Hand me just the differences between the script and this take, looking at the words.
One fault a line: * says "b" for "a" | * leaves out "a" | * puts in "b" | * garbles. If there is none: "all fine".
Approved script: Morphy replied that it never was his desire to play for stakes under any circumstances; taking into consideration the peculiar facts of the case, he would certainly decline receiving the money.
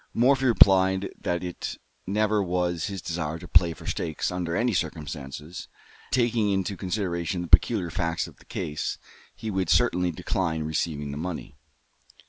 all fine